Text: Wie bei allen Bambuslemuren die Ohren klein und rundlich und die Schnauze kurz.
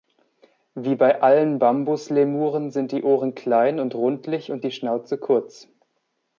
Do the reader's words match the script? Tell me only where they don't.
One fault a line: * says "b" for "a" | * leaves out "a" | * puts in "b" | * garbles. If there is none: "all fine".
* puts in "sind"